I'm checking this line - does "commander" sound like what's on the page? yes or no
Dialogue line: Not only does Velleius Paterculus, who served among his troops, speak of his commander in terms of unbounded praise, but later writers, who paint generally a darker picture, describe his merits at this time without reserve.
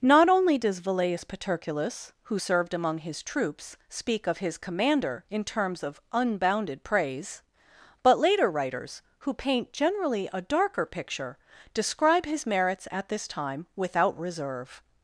yes